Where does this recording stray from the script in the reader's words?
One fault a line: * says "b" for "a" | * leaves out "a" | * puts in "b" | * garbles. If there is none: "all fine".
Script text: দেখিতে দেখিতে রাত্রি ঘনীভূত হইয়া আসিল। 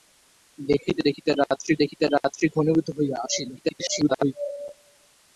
* puts in "দেখিতে রাত্রি"
* garbles